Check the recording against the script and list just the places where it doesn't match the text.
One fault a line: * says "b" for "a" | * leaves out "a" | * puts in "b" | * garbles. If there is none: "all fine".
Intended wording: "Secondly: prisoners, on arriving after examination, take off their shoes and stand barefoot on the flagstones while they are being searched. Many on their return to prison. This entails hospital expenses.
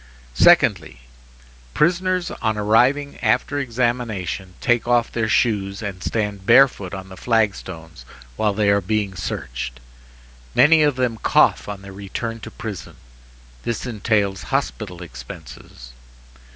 * puts in "of them cough"